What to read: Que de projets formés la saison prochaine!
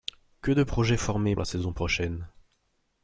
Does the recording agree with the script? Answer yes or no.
yes